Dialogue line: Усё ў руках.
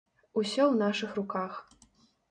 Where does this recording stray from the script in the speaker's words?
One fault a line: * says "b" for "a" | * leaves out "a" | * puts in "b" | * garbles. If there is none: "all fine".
* puts in "нашых"